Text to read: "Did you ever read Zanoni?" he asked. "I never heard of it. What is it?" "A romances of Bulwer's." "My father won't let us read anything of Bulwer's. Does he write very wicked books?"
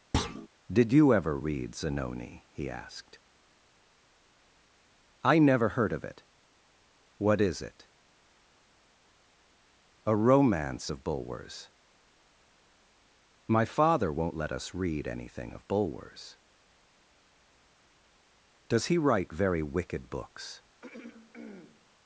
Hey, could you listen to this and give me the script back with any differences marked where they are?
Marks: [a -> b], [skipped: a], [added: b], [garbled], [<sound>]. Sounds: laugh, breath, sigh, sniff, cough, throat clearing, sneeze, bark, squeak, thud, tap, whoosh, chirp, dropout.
[thud] "Did you ever read Zanoni?" he asked. "I never heard of it. What is it?" "A [romances -> romance] of Bulwer's." "My father won't let us read anything of Bulwer's. Does he write very wicked books?" [throat clearing]